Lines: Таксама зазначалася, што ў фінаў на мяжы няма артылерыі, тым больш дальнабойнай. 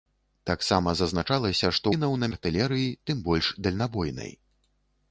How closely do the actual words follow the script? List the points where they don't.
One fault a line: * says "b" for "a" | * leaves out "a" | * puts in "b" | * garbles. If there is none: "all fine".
* leaves out "ў"
* leaves out "мяжы няма"